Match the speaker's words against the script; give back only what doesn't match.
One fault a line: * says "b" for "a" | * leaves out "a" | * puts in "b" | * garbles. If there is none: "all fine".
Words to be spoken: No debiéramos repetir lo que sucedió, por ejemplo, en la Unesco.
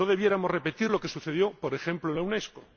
all fine